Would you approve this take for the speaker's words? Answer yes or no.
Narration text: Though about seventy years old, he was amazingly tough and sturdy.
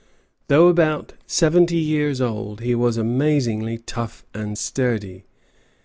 yes